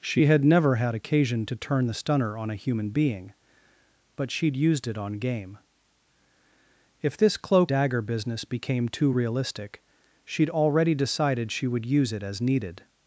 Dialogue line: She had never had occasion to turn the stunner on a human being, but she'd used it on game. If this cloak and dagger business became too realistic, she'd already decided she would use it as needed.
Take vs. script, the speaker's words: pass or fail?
fail